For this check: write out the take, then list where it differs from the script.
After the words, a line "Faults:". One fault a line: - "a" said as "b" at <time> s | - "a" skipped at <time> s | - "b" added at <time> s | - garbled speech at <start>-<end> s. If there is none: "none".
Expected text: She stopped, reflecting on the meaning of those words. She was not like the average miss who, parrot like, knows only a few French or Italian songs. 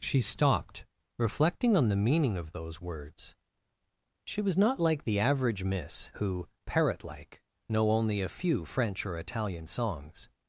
She stopped, reflecting on the meaning of those words. She was not like the average miss who, parrot like, know only a few French or Italian songs.
Faults:
- "knows" said as "know" at 7.7 s